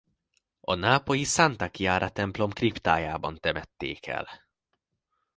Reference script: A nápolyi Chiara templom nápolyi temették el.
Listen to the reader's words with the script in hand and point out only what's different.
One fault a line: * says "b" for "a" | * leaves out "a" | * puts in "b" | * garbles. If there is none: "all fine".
* puts in "Santa"
* says "kriptájában" for "nápolyi"